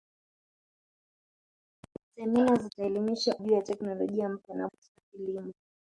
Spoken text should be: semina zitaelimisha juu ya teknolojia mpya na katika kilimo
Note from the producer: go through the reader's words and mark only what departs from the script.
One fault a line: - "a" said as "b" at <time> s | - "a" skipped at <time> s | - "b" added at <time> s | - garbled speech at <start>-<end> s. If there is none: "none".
none